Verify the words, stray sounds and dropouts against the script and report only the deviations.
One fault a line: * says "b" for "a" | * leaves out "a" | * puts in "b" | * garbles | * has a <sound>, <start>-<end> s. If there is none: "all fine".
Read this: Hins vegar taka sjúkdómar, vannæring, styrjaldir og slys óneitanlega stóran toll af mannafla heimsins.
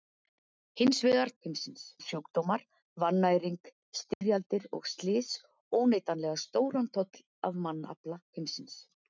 * says "heimsins" for "taka"
* has a dropout, 4.1-4.2 s